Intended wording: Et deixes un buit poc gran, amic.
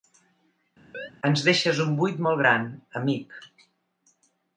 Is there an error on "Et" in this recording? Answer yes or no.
yes